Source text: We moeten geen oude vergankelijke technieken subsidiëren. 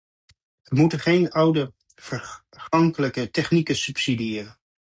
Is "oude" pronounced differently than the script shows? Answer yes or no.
no